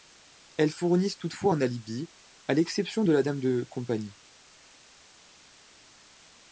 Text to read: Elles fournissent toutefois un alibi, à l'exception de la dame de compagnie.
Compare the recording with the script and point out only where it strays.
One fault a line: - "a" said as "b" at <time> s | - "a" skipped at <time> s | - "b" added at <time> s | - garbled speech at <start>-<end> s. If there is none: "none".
none